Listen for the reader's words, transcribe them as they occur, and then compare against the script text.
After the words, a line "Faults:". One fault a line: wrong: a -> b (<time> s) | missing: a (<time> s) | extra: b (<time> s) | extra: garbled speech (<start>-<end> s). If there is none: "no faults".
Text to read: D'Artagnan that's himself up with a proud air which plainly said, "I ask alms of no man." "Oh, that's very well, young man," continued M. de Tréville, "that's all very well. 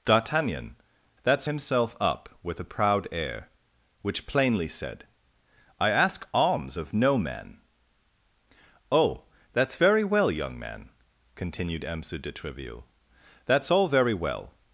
D'Artagnan that's himself up with a proud air which plainly said, "I ask alms of no man." "Oh, that's very well, young man," continued M. de Tréville, "that's all very well.
Faults:
no faults